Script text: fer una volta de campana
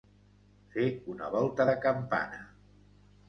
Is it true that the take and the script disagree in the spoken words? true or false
false